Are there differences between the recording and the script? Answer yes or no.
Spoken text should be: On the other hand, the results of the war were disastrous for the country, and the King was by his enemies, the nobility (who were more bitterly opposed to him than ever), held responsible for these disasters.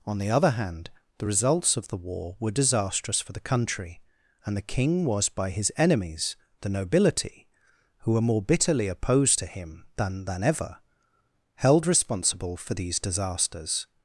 yes